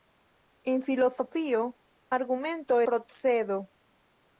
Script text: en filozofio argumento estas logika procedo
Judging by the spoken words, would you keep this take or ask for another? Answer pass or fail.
fail